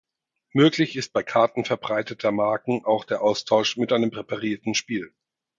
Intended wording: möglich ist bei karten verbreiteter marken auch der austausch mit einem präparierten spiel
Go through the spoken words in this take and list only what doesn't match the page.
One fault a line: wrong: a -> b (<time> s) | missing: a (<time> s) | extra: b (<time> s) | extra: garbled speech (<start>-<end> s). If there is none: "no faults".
no faults